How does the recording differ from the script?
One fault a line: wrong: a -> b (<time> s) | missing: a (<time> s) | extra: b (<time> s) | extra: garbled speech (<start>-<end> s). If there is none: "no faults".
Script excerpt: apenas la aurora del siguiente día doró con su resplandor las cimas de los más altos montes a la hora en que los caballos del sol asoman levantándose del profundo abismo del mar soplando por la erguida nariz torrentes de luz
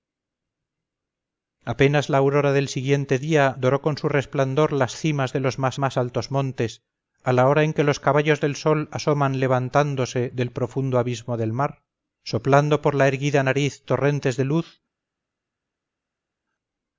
extra: más (5.8 s)